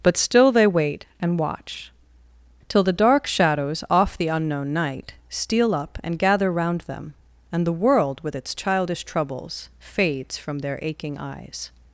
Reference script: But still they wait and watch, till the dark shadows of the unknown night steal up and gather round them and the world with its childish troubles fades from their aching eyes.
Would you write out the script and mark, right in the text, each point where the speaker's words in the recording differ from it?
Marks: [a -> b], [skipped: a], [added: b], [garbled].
But still they wait and watch, till the dark shadows [of -> off] the unknown night steal up and gather round them and the world with its childish troubles fades from their aching eyes.